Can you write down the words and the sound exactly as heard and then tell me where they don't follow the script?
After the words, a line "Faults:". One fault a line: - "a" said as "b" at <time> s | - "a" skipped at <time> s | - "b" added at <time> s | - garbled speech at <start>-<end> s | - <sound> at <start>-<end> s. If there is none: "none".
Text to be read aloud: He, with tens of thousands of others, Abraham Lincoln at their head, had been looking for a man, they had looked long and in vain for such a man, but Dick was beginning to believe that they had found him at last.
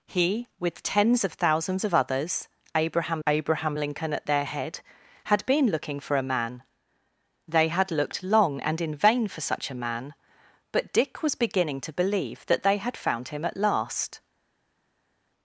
He, with tens of thousands of others, Abraham Abraham Lincoln at their head, had been looking for a man, they had looked long and in vain for such a man, but Dick was beginning to believe that they had found him at last.
Faults:
- "Abraham" added at 3.3 s